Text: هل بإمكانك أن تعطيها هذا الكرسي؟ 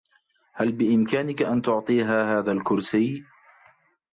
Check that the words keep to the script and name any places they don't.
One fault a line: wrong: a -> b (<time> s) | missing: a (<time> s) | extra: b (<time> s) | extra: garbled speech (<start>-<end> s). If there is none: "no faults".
no faults